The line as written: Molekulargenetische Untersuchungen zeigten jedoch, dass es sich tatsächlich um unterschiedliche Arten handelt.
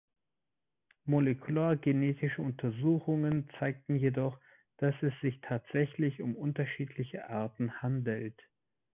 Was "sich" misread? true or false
false